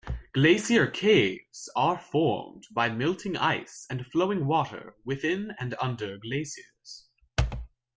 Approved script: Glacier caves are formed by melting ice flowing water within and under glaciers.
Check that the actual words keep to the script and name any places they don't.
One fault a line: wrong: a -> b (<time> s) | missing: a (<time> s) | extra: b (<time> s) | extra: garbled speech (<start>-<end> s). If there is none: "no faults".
extra: and (3.9 s)